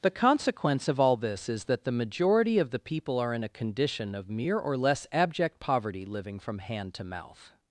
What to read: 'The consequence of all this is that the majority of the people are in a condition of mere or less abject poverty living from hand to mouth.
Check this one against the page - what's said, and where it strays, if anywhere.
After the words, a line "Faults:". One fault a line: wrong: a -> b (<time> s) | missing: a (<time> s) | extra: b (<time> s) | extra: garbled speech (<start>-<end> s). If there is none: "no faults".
'The consequence of all this is that the majority of the people are in a condition of mere or less abject poverty living from hand to mouth.
Faults:
no faults